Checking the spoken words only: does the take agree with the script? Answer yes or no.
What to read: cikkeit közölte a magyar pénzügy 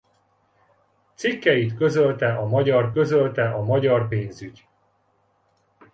no